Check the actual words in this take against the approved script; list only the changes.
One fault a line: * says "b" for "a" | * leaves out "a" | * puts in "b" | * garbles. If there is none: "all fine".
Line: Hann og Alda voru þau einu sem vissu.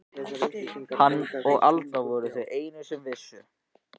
all fine